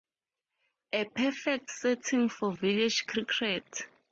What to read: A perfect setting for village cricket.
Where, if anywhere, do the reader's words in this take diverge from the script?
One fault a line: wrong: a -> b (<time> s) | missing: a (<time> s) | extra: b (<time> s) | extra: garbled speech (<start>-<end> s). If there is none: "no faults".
no faults